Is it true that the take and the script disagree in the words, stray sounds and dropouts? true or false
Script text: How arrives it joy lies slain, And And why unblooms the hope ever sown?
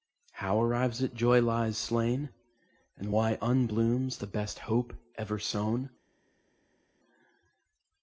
true